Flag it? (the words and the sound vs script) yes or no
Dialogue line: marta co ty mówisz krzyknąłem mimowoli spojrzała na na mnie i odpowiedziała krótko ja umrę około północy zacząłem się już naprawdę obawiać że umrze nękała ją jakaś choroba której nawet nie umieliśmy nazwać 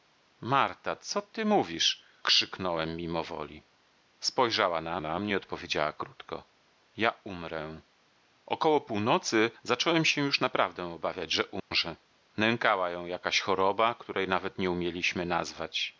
yes